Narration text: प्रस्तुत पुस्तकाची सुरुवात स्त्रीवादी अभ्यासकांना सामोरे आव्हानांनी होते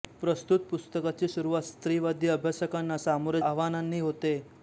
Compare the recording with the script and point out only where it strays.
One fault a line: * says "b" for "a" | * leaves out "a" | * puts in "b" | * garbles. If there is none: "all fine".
all fine